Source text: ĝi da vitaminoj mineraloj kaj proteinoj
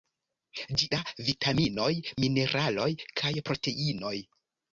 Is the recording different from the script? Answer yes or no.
no